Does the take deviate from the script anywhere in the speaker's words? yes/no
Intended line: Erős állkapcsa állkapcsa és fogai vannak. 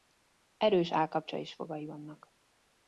yes